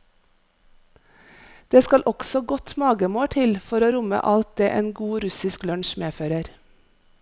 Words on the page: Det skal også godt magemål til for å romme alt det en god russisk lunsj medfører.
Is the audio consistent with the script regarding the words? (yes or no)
yes